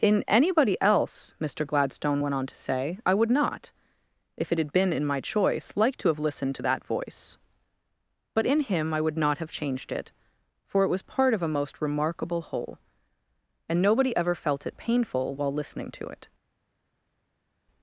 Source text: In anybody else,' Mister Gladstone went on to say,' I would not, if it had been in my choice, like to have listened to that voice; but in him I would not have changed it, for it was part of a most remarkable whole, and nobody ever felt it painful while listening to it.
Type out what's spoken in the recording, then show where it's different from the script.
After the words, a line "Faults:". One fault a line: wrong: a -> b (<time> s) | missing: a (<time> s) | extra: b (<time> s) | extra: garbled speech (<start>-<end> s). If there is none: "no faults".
In anybody else,' Mister Gladstone went on to say,' I would not, if it had been in my choice, like to have listened to that voice; but in him I would not have changed it, for it was part of a most remarkable whole, and nobody ever felt it painful while listening to it.
Faults:
no faults